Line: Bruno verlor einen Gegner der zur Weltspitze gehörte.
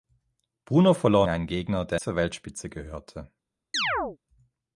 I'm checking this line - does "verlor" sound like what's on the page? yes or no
yes